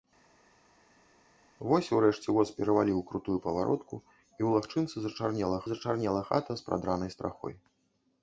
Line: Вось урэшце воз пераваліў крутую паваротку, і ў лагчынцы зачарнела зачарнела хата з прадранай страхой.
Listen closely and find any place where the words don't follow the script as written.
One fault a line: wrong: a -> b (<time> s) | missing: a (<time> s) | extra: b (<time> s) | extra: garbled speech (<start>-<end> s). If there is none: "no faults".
no faults